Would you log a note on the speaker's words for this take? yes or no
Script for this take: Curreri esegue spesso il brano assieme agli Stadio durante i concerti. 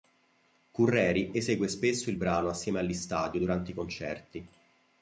no